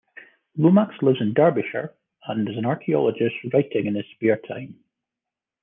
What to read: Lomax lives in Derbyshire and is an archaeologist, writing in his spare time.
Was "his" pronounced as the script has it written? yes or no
yes